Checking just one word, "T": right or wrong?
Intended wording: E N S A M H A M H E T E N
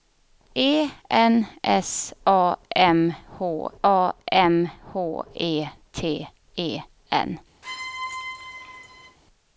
right